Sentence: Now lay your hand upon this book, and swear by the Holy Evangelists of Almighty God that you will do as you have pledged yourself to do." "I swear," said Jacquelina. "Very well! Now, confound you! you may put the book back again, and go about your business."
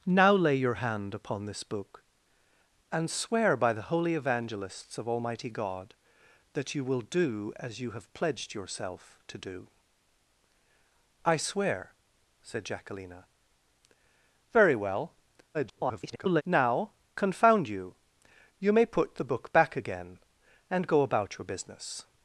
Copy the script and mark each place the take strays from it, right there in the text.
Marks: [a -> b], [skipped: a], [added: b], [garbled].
Now lay your hand upon this book, and swear by the Holy Evangelists of Almighty God that you will do as you have pledged yourself to do." "I swear," said Jacquelina. "Very well! [garbled] Now, confound you! you may put the book back again, and go about your business."